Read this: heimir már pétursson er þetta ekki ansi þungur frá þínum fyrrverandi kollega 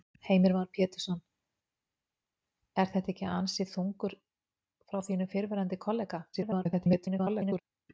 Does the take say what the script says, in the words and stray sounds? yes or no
no